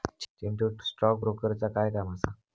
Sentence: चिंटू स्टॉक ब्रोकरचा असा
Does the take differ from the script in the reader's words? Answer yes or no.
yes